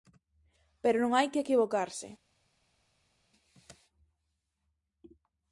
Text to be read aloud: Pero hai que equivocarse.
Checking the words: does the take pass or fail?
fail